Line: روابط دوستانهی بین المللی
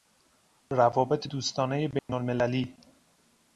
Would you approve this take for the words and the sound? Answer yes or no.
no